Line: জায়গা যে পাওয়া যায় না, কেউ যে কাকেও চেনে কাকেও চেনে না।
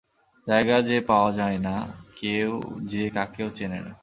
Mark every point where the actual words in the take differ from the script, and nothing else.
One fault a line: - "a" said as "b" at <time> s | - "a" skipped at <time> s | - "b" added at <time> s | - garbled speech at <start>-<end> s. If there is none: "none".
- "কাকেও চেনে" skipped at 3.8 s